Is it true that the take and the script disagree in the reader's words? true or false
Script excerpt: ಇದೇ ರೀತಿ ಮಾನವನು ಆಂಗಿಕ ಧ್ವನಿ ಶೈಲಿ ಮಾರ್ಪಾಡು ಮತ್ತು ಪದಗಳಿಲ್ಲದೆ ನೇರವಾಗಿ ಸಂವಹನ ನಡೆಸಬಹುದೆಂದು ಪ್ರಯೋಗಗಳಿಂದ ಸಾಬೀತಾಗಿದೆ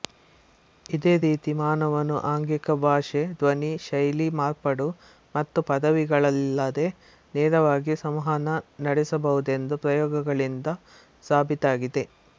true